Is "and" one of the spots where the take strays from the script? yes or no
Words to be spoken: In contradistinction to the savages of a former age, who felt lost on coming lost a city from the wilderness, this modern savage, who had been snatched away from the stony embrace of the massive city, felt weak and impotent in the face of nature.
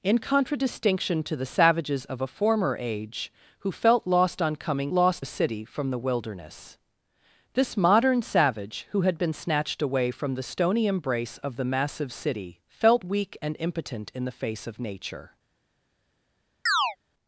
no